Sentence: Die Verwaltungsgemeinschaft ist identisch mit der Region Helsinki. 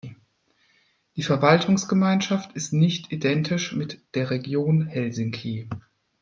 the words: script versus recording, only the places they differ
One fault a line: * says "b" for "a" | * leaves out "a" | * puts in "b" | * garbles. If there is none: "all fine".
* puts in "nicht"